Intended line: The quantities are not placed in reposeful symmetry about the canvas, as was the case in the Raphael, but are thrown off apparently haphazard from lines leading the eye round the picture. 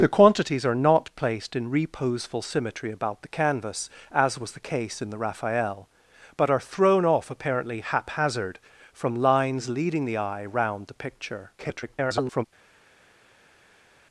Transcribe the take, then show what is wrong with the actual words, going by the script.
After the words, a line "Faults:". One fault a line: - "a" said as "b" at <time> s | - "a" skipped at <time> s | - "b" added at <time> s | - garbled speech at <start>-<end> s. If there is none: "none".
The quantities are not placed in reposeful symmetry about the canvas, as was the case in the Raphael, but are thrown off apparently haphazard from lines leading the eye round the picture. [garbled]
Faults:
- garbled speech at 11.6-12.5 s